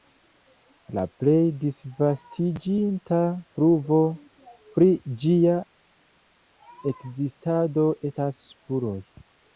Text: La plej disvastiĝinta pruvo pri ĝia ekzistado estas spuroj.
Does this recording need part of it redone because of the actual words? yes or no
no